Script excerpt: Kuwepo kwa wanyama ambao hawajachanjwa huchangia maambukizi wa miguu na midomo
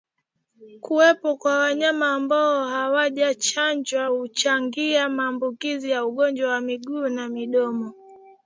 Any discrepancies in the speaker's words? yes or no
yes